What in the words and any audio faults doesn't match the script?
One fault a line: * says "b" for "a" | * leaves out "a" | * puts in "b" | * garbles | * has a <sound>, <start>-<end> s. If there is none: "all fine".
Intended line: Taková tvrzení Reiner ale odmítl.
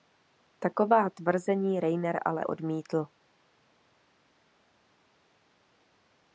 all fine